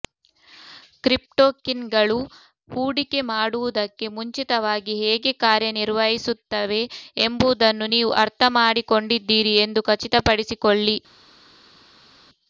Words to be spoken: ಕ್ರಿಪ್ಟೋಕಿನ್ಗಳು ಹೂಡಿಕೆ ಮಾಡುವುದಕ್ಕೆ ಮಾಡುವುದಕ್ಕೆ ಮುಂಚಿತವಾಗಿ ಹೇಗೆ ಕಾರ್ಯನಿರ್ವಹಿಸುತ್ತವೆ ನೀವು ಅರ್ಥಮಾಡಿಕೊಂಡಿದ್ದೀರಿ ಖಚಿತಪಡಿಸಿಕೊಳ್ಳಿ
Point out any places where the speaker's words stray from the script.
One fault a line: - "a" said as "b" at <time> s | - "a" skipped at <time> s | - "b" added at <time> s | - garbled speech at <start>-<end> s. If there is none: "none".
- "ಮಾಡುವುದಕ್ಕೆ" skipped at 4.1 s
- "ಎಂಬುದನ್ನು" added at 7.2 s
- "ಎಂದು" added at 9.7 s